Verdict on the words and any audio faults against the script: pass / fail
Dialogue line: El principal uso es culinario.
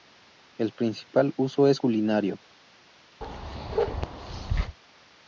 fail